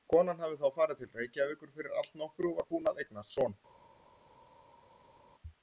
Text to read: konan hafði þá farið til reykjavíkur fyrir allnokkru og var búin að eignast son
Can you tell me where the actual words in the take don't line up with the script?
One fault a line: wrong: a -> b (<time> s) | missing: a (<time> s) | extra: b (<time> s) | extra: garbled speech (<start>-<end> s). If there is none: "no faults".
no faults